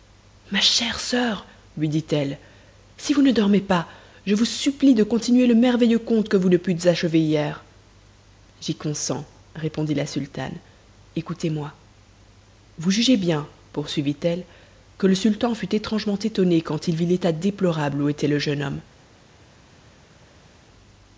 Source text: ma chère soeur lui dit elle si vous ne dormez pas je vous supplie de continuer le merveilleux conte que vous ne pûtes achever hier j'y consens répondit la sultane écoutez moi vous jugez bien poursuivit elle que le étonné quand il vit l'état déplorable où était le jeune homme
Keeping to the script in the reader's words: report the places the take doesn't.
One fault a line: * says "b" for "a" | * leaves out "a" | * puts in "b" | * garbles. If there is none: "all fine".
* puts in "sultan fut étrangement"